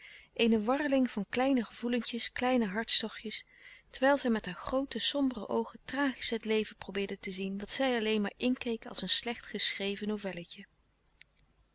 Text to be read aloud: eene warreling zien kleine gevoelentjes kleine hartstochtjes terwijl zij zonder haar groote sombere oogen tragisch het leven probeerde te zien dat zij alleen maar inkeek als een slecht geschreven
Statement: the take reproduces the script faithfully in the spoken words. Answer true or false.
false